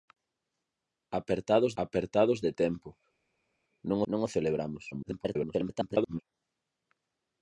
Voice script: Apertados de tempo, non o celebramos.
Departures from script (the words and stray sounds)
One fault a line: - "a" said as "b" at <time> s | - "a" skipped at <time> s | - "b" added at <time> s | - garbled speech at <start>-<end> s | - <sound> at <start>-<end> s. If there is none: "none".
- "apertados" added at 1.8 s
- "non" added at 4.1 s
- garbled speech at 4.9-6.2 s